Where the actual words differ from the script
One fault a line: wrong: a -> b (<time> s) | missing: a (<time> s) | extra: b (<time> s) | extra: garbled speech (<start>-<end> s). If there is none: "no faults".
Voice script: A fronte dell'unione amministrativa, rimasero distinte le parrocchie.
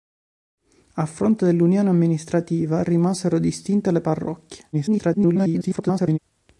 extra: garbled speech (4.7-6.2 s)